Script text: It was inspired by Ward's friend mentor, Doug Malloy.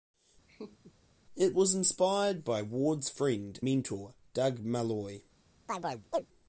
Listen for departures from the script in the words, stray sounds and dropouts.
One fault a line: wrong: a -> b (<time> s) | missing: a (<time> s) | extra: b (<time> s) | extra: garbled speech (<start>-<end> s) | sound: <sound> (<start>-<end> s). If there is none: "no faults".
sound: laugh (0.5-0.9 s)
sound: chirp (5.7-6.3 s)